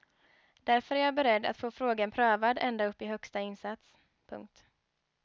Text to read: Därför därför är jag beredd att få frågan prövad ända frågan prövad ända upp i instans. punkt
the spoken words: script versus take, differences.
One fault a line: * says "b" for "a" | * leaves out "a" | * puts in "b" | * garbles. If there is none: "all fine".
* leaves out "därför"
* leaves out "frågan prövad ända"
* puts in "högsta"